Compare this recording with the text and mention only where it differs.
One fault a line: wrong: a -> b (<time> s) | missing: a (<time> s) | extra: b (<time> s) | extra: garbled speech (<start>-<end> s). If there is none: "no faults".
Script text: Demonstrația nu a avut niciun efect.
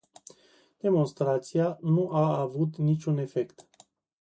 no faults